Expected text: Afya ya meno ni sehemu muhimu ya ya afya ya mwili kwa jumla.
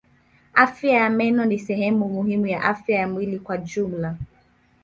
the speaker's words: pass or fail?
fail